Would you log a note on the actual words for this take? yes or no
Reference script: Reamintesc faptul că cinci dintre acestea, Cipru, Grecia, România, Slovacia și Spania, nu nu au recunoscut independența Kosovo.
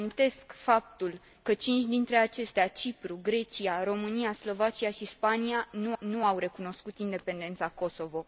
no